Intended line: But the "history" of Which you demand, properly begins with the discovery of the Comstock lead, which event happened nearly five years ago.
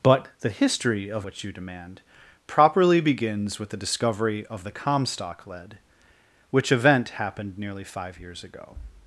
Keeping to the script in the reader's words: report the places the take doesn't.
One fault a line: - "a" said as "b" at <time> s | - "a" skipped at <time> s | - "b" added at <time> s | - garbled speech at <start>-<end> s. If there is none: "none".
none